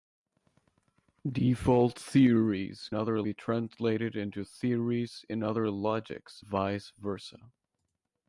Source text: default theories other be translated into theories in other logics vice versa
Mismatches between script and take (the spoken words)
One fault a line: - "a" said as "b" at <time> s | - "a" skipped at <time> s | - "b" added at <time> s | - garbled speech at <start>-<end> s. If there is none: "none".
none